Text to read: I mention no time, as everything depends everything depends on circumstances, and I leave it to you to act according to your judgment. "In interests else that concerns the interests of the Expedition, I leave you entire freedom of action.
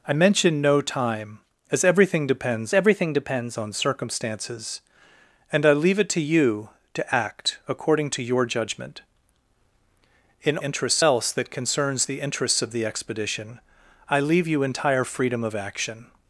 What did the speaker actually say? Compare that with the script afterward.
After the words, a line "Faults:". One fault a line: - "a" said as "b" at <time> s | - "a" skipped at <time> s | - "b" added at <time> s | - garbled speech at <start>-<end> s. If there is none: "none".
I mention no time, as everything depends everything depends on circumstances, and I leave it to you to act according to your judgment. "In interests else that concerns the interests of the Expedition, I leave you entire freedom of action.
Faults:
none